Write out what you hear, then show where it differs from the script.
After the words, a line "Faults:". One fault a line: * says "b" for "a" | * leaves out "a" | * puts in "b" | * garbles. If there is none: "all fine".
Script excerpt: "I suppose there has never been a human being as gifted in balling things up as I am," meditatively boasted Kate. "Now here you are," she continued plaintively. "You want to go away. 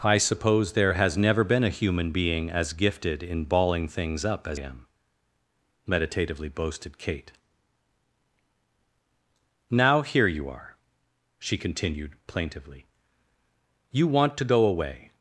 "I suppose there has never been a human being as gifted in balling things up as am," meditatively boasted Kate. "Now here you are," she continued plaintively. "You want to go away.
Faults:
* leaves out "I"